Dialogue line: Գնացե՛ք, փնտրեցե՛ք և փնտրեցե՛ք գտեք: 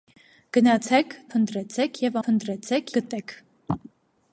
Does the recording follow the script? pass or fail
pass